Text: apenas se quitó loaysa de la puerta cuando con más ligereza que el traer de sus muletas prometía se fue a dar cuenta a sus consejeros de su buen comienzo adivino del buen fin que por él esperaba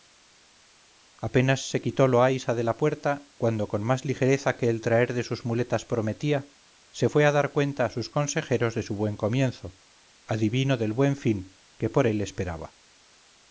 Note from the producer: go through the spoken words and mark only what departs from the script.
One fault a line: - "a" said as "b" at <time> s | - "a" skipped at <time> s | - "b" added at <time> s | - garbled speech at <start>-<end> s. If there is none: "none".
none